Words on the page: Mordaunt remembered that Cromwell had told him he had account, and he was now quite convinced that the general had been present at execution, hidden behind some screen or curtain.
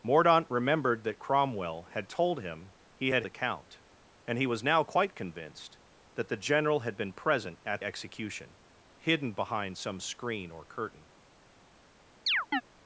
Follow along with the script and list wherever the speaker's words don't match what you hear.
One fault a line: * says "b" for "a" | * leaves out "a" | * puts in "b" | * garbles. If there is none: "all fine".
all fine